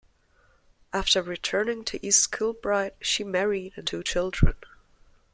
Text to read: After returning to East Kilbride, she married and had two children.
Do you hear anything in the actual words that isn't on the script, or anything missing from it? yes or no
yes